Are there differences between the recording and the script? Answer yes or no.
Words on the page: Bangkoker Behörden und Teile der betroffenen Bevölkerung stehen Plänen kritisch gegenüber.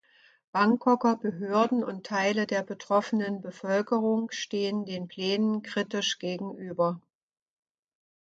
yes